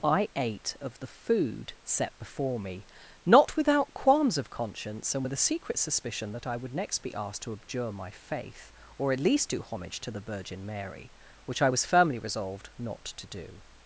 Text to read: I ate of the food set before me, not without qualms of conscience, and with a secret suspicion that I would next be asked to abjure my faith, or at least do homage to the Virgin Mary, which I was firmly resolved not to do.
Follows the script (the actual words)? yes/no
yes